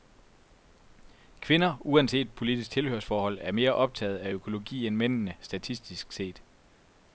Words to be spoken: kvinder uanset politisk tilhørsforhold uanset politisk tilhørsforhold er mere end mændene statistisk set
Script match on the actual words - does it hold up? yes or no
no